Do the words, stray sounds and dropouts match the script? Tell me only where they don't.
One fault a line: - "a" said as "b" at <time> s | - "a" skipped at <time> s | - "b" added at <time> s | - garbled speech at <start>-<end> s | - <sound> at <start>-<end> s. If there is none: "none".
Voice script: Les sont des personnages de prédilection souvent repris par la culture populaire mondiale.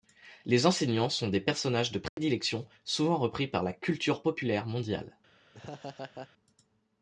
- "enseignants" added at 0.7 s
- dropout at 2.1-2.2 s
- laugh at 5.5-6.3 s